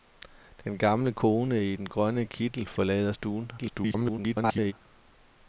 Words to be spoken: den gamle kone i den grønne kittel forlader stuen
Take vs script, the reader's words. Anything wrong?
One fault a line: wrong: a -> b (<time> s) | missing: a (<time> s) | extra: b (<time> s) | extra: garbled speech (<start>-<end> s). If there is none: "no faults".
extra: garbled speech (3.6-4.7 s)